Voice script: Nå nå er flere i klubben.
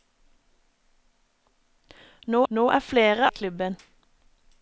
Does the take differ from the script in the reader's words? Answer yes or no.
no